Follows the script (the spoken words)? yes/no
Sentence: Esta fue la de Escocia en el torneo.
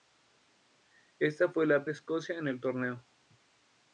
yes